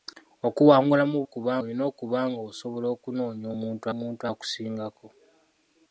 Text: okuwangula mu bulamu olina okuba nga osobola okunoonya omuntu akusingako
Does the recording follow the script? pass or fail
fail